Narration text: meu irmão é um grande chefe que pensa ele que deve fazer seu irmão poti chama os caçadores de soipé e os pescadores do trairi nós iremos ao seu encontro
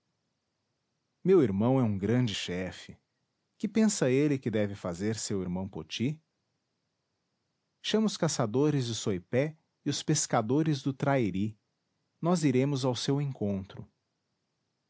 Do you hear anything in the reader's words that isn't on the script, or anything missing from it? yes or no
no